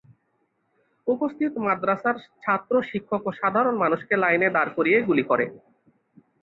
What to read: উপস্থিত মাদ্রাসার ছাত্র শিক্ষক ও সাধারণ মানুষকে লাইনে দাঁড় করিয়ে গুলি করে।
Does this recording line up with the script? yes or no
yes